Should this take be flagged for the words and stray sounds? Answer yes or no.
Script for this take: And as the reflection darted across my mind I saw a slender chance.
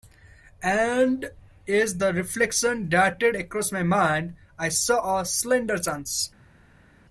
no